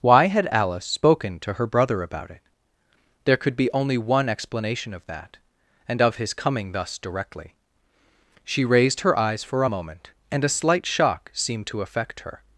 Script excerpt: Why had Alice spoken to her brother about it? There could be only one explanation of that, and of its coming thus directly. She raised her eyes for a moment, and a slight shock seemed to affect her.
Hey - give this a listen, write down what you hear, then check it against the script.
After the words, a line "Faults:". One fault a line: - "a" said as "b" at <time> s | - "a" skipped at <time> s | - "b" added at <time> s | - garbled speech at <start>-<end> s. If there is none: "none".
Why had Alice spoken to her brother about it? There could be only one explanation of that, and of his coming thus directly. She raised her eyes for a moment, and a slight shock seemed to affect her.
Faults:
- "its" said as "his" at 6.2 s